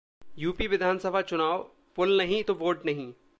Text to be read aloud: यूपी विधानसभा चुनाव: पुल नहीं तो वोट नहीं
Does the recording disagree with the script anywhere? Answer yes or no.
no